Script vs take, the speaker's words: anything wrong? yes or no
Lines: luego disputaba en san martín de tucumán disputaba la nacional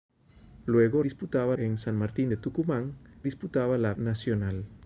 no